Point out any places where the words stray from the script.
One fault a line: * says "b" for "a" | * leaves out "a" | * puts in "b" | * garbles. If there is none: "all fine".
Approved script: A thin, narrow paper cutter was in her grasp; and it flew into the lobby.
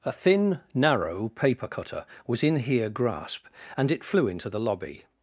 * says "here" for "her"